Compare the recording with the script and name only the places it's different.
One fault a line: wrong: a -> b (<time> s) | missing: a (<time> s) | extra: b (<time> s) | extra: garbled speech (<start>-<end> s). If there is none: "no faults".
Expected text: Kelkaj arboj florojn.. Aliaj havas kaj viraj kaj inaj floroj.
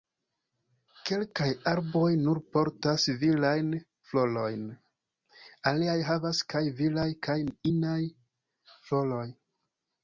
extra: nur portas virajn (2.2 s)